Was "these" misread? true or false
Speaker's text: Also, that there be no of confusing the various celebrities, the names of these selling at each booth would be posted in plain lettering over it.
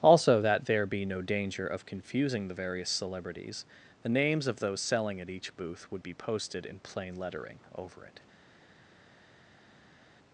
true